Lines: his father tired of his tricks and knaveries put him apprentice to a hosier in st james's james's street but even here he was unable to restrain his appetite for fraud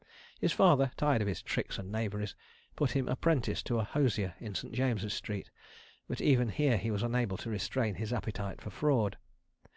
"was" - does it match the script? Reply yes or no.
yes